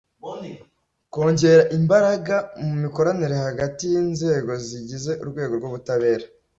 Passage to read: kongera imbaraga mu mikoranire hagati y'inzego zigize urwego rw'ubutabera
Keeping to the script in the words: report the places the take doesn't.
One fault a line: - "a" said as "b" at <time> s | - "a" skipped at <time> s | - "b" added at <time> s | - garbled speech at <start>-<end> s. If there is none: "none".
none